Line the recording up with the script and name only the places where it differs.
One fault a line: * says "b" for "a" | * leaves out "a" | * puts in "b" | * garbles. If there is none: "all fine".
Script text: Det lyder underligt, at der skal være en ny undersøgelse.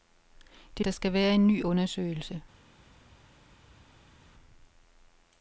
* leaves out "lyder underligt at"